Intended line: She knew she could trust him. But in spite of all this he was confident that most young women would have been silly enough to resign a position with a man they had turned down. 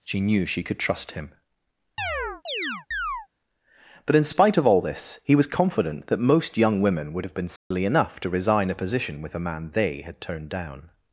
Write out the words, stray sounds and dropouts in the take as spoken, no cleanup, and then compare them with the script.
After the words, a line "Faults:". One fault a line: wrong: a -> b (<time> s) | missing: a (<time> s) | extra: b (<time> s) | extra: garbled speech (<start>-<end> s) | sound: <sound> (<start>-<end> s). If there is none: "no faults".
She knew she could trust him. But in spite of all this he was confident that most young women would have been silly enough to resign a position with a man they had turned down.
Faults:
sound: chirp (2.0-3.3 s)
sound: dropout (7.6-7.7 s)